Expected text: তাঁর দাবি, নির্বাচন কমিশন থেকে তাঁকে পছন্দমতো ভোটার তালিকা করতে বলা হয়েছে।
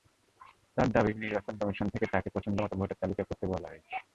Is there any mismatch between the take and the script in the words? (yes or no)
no